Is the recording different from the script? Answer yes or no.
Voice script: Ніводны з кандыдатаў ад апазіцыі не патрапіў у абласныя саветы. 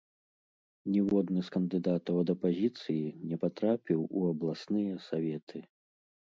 no